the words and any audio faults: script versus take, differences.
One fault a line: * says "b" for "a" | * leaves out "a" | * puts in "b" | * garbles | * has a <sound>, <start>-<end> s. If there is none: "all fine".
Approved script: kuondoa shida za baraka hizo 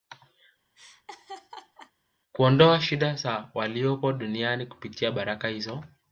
* has a laugh, 0.7-1.9 s
* puts in "waliopo duniani kupitia"